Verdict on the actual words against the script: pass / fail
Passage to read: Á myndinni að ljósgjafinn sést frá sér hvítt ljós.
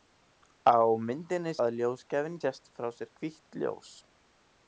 pass